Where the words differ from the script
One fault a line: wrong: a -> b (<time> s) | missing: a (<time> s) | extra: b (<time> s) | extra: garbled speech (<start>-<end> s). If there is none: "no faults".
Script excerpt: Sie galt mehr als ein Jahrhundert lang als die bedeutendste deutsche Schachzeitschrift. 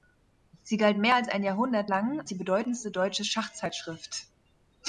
missing: als (2.3 s)